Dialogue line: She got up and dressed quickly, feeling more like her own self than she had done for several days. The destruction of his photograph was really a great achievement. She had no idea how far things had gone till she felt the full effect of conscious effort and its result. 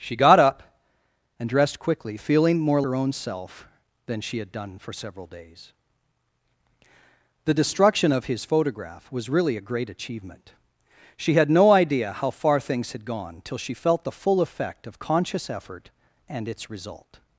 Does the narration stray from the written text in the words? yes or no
yes